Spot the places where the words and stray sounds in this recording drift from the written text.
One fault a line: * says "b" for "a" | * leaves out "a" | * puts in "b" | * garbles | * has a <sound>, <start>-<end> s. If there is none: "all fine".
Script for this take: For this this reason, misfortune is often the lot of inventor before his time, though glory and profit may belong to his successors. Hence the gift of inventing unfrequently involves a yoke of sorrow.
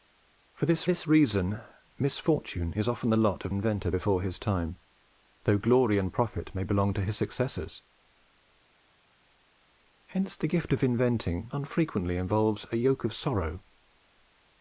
all fine